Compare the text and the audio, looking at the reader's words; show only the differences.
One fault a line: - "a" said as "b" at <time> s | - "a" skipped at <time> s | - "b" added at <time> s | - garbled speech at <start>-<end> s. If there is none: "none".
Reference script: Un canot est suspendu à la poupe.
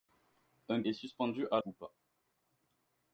- "canot" skipped at 0.8 s
- "la" skipped at 1.6 s